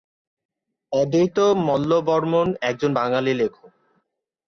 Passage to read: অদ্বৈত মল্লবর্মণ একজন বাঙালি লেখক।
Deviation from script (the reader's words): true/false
false